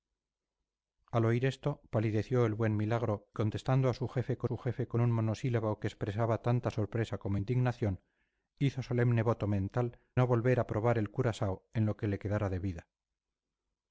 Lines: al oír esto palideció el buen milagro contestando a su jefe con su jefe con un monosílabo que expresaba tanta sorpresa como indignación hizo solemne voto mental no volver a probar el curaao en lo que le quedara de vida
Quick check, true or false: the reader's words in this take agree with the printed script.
true